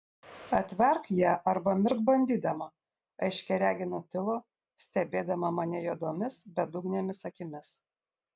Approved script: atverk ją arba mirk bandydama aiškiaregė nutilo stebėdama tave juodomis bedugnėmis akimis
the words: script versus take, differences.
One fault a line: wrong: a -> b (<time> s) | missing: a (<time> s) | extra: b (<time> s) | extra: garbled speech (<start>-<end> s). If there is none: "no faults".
wrong: tave -> mane (5.6 s)